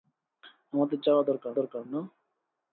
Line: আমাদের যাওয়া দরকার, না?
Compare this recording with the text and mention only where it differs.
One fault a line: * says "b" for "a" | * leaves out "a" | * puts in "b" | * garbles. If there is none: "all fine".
* puts in "দরকার"